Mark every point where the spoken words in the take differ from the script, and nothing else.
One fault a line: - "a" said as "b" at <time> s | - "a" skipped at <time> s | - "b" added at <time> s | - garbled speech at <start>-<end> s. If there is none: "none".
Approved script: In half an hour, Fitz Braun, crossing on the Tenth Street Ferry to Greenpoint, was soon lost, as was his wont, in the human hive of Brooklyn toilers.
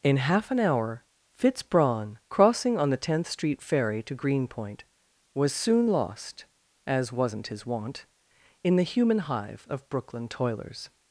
- "was" said as "wasn't" at 7.1 s